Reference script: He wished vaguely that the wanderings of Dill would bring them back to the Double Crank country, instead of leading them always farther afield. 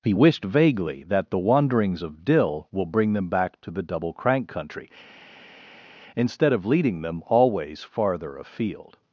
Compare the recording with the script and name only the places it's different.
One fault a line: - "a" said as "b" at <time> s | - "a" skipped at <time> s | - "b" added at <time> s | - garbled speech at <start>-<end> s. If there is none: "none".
- "would" said as "will" at 2.7 s